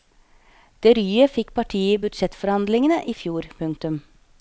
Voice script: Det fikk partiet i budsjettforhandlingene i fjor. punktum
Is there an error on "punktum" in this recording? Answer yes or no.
no